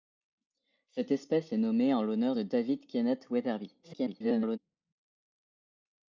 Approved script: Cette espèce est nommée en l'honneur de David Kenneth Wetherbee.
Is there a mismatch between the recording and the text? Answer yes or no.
yes